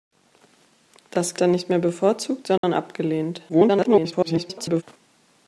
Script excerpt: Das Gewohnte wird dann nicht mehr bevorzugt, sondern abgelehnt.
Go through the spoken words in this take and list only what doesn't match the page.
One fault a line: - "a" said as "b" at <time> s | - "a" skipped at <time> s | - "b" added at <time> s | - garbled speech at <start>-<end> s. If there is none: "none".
- "Gewohnte wird" skipped at 1.4 s
- garbled speech at 3.5-4.8 s